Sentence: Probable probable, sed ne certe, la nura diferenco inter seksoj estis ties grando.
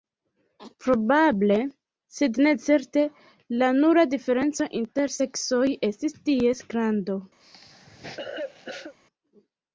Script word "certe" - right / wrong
right